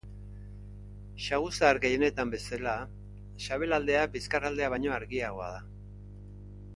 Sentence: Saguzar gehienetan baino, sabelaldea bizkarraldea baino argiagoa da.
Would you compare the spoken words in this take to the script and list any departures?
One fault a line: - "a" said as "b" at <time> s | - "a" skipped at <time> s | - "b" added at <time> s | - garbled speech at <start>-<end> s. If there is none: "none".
- "baino" said as "bezala" at 2.4 s